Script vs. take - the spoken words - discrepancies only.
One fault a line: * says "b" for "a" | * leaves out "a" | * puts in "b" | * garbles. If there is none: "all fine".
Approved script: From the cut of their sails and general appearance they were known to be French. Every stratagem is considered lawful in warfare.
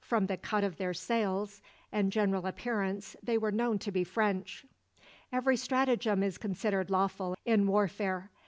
all fine